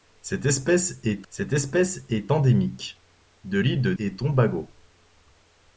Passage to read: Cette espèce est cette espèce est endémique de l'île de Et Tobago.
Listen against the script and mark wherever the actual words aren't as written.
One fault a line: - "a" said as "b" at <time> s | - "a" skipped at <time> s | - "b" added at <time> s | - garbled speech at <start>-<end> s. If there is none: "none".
none